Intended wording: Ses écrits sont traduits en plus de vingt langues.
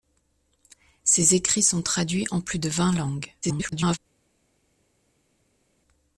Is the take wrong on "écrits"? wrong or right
right